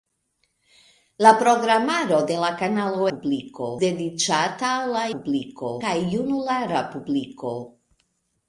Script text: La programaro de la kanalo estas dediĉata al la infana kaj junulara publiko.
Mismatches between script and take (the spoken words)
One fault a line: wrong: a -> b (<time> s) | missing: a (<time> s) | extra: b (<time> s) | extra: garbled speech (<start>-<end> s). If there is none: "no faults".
wrong: estas -> publiko (3.1 s)
wrong: infana -> publiko (5.2 s)